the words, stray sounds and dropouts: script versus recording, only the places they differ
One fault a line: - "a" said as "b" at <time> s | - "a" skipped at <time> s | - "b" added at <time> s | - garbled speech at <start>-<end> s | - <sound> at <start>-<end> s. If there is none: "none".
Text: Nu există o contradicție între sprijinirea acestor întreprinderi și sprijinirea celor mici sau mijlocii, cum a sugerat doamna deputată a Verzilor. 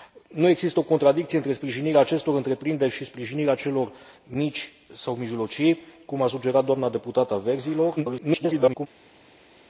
- garbled speech at 8.0-8.9 s